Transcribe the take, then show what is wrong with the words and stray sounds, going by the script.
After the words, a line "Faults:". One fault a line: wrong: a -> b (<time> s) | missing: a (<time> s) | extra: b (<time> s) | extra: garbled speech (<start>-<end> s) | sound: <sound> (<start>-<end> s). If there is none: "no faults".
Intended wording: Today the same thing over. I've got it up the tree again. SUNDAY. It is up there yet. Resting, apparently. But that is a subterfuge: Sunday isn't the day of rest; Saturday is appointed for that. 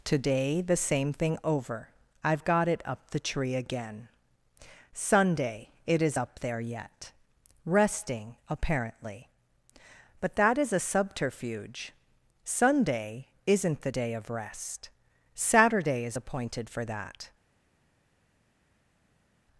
Today the same thing over. I've got it up the tree again. SUNDAY. It is up there yet. Resting, apparently. But that is a subterfuge: Sunday isn't the day of rest; Saturday is appointed for that.
Faults:
no faults